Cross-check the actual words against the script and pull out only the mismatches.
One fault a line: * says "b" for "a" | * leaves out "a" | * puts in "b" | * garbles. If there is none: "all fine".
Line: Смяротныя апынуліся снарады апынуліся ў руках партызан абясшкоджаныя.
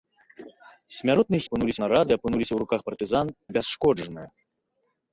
all fine